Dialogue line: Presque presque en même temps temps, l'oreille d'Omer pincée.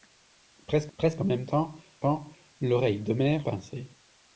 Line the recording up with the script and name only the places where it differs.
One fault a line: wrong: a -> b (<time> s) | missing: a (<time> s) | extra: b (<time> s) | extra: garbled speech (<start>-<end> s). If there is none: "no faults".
no faults